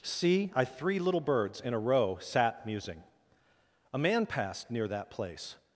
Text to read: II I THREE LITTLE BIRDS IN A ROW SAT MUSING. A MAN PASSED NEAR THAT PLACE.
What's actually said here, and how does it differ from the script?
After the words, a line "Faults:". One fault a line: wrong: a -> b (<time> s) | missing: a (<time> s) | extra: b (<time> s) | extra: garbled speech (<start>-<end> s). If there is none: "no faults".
See I THREE LITTLE BIRDS IN A ROW SAT MUSING. A MAN PASSED NEAR THAT PLACE.
Faults:
wrong: II -> See (0.0 s)